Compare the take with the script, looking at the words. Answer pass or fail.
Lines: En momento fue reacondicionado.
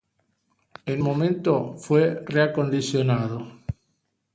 pass